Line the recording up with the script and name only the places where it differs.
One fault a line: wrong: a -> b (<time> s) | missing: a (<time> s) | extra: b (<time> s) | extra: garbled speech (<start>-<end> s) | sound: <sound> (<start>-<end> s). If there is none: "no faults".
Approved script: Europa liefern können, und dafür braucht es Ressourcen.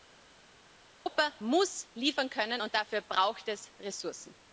extra: muss (1.4 s)